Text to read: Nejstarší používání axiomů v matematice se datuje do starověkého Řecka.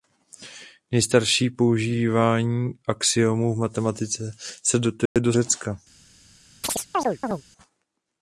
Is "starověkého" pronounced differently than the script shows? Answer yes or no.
yes